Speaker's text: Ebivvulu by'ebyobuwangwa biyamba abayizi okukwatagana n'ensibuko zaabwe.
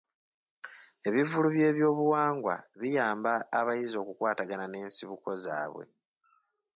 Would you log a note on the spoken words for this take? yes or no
no